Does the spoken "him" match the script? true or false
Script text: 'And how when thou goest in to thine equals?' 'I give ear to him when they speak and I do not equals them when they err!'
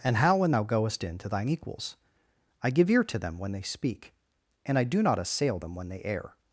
false